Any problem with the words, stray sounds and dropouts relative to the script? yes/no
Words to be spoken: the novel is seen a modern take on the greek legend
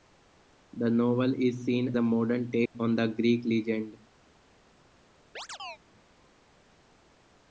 yes